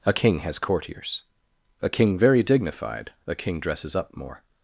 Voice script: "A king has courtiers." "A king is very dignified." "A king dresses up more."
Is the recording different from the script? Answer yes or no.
yes